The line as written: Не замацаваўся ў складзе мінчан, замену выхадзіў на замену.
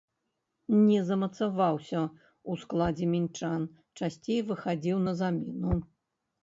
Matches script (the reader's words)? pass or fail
fail